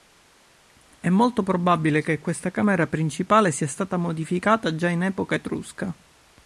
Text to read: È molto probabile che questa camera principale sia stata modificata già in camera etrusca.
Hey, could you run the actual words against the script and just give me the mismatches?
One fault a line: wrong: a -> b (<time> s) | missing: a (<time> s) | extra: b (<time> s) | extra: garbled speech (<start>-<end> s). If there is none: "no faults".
wrong: camera -> epoca (5.0 s)